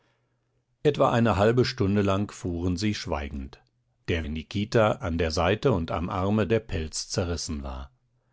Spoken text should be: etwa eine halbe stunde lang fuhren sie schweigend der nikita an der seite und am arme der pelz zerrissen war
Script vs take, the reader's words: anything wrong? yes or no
no